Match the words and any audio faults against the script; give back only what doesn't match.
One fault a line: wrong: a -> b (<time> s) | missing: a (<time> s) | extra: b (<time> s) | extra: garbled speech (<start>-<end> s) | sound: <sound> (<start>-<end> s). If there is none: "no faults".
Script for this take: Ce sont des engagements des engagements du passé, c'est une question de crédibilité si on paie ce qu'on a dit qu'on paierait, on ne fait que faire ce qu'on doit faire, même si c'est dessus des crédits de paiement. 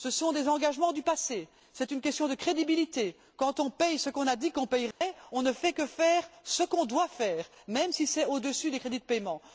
missing: des engagements (0.9 s)
wrong: si -> quand (3.4 s)
sound: dropout (4.9-5.0 s)
extra: au (8.3 s)